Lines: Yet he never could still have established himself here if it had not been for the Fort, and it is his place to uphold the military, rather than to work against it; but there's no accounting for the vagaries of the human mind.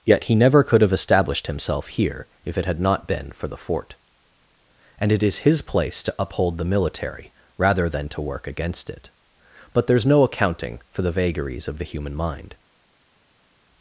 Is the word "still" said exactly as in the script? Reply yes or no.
no